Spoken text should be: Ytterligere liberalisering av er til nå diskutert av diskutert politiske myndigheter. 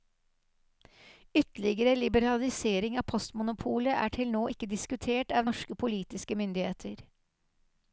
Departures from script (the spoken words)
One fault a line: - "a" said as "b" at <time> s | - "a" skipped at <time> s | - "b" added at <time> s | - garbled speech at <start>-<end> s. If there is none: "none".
- "postmonopolet" added at 3.1 s
- "ikke" added at 4.5 s
- "diskutert" said as "norske" at 5.5 s